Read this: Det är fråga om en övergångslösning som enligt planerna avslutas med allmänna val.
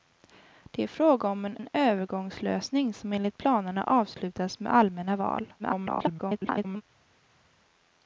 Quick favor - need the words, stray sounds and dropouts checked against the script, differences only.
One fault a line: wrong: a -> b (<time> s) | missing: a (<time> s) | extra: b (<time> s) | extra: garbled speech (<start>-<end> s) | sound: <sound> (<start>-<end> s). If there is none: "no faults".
extra: en (1.6 s)
extra: garbled speech (5.6-6.8 s)